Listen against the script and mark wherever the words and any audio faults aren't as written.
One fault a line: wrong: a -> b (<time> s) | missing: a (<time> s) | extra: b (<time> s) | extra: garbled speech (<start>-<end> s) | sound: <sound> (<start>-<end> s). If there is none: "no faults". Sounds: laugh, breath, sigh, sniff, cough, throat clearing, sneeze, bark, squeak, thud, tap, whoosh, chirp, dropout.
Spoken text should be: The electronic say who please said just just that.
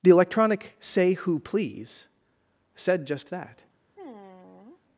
missing: just (3.3 s)
sound: sigh (4.0-4.8 s)